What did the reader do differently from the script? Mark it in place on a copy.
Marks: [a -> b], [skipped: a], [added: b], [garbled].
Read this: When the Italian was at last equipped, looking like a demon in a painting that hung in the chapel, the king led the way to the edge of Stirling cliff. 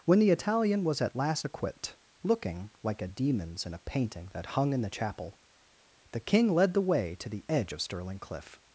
When the Italian was at last equipped, looking like a [demon -> demons] in a painting that hung in the chapel, the king led the way to the edge of Stirling cliff.